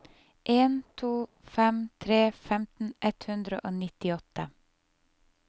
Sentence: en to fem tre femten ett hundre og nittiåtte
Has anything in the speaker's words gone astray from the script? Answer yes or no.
no